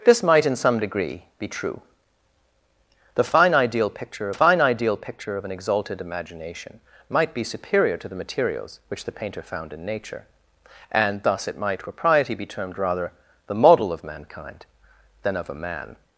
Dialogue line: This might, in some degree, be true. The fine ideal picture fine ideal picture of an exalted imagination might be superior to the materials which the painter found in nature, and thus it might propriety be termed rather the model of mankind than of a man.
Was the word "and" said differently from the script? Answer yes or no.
no